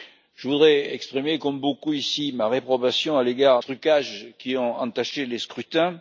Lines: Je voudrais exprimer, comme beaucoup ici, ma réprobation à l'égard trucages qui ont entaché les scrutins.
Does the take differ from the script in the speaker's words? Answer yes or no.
no